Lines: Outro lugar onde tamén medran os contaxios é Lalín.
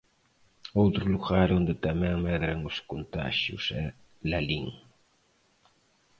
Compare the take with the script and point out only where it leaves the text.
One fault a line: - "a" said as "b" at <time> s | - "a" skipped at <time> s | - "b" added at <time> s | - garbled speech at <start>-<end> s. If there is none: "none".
none